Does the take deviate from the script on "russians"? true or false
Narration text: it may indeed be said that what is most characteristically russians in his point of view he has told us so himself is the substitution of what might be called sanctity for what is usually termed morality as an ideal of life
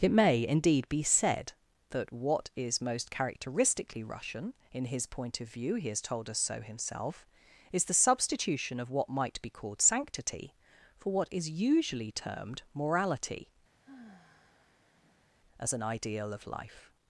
true